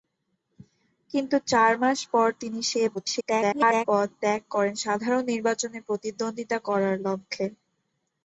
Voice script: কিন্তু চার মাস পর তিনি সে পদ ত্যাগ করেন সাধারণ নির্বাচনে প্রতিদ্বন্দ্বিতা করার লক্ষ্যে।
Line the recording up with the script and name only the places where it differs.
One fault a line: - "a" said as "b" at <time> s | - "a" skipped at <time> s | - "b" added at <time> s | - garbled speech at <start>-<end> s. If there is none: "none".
- garbled speech at 2.9-3.9 s